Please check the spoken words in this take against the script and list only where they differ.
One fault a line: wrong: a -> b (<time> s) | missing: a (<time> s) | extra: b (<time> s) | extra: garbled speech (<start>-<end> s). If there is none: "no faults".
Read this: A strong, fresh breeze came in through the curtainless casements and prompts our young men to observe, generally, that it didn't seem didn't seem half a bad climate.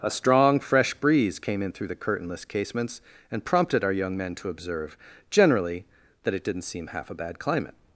wrong: prompts -> prompted (3.5 s)
missing: didn't seem (6.9 s)